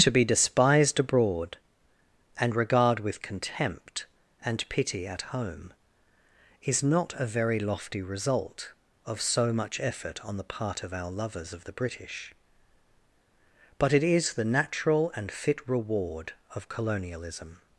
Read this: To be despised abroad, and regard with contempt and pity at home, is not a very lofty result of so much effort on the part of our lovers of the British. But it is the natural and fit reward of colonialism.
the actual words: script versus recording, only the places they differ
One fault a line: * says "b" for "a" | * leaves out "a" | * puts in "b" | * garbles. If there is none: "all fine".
all fine